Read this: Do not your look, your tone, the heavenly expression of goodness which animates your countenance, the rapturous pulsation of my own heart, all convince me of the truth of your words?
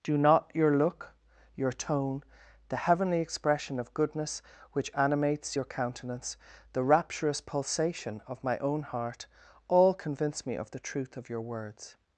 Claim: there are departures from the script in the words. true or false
false